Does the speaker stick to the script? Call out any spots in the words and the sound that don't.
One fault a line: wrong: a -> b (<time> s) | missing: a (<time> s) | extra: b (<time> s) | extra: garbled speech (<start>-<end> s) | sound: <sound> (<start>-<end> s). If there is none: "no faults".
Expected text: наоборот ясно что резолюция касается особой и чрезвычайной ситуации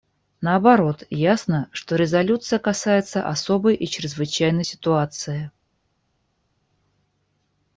no faults